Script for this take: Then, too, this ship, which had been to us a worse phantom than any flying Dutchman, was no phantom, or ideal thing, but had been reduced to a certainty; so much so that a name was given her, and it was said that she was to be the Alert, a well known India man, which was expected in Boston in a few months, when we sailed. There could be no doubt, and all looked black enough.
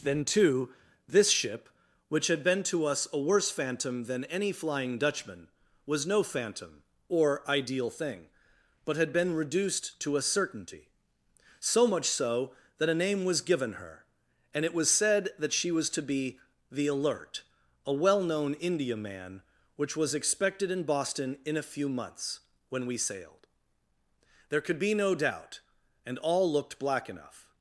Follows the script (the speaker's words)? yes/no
yes